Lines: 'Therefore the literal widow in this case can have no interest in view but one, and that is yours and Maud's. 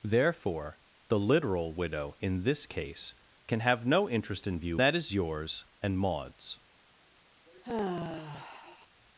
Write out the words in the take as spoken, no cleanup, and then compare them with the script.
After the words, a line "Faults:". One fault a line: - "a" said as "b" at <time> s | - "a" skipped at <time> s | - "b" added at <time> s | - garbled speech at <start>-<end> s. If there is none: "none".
'Therefore the literal widow in this case can have no interest in view that is yours and Maud's.
Faults:
- "but one and" skipped at 4.8 s